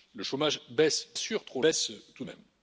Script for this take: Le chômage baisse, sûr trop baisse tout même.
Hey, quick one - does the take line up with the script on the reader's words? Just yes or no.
yes